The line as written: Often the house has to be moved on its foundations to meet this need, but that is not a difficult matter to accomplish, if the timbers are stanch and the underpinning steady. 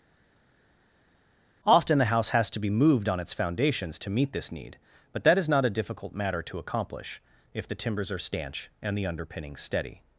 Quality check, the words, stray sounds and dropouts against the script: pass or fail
pass